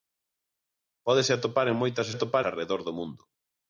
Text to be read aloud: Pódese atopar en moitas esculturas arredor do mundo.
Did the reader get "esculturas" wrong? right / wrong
wrong